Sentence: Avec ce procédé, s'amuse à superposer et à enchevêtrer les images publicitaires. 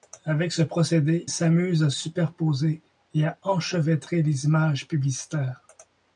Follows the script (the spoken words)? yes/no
yes